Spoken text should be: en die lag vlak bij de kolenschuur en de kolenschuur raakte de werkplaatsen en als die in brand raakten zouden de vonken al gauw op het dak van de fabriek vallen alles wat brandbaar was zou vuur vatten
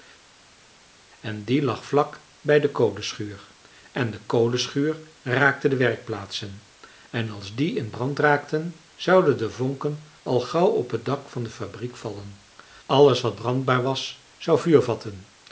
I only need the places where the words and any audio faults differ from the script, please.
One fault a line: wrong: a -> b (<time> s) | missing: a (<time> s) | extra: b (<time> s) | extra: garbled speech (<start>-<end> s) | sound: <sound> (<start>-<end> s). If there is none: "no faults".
no faults